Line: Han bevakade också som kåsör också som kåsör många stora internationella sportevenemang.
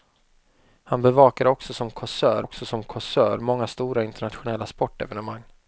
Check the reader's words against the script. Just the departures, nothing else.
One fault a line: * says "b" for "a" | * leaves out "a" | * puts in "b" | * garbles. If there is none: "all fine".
all fine